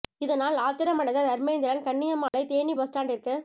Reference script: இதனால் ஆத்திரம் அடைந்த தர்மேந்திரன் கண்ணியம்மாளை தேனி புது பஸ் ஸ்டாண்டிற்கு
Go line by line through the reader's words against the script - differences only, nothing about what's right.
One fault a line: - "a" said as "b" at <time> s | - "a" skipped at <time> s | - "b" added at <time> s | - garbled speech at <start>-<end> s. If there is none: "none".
- "புது" skipped at 2.8 s